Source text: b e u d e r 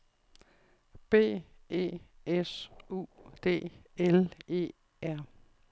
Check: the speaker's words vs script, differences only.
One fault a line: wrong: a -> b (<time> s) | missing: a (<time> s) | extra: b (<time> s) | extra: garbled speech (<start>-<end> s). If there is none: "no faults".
extra: s (2.2 s)
extra: l (4.0 s)